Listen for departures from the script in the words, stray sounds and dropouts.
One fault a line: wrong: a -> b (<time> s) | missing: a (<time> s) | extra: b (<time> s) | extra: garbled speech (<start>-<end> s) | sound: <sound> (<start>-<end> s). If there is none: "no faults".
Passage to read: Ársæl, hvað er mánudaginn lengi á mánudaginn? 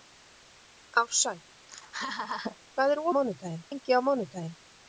sound: laugh (1.7-2.6 s)